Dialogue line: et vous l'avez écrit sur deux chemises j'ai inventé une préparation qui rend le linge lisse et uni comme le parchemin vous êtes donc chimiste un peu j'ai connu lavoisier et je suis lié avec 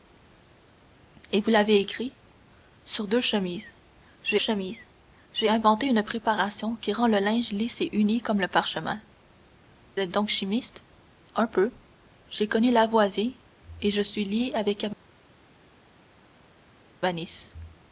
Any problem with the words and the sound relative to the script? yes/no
yes